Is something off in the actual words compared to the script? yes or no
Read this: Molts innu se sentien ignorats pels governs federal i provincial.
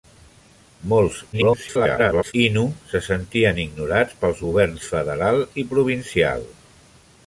yes